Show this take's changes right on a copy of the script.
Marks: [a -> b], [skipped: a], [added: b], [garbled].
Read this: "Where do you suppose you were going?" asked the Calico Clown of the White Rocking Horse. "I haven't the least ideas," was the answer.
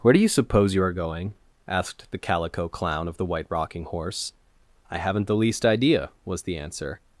"Where do you suppose you [were -> are] going?" asked the Calico Clown of the White Rocking Horse. "I haven't the least [ideas," -> idea] was the answer.